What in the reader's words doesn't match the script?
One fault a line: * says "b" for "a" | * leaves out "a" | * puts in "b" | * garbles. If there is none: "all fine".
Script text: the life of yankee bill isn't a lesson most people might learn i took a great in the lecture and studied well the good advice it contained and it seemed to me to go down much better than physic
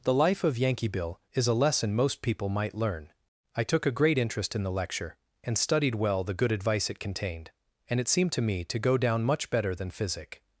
* says "is" for "isn't"
* puts in "interest"